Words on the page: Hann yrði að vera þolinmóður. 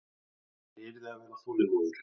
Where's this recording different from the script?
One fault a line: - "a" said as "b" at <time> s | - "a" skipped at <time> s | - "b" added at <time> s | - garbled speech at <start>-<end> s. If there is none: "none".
none